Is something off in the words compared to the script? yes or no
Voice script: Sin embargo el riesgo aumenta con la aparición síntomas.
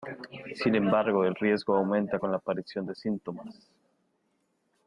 yes